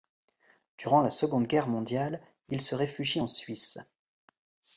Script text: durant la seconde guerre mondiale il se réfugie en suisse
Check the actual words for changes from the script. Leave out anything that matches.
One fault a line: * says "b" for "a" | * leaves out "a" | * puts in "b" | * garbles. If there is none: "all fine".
all fine